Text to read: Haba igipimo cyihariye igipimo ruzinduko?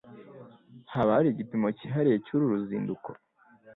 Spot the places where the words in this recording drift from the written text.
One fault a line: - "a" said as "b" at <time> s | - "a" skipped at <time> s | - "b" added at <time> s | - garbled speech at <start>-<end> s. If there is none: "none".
- "hari" added at 1.2 s
- "igipimo" said as "cyuru" at 2.3 s